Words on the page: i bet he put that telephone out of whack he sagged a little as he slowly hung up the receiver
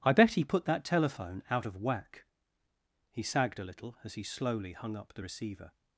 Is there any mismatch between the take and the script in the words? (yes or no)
no